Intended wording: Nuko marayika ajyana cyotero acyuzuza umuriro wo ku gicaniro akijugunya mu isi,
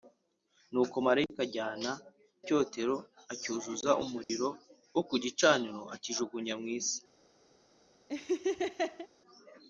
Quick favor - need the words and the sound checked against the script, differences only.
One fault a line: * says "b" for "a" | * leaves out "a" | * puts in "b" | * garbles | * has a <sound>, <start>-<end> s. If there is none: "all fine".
* has a dropout, 4.2-4.3 s
* has a laugh, 8.1-9.1 s